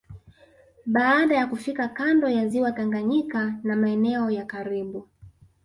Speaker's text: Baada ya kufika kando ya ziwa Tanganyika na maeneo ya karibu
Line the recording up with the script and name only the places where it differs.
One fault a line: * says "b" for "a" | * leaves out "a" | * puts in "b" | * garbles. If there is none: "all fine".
all fine